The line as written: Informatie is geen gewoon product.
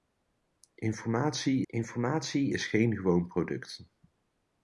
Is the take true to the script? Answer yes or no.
no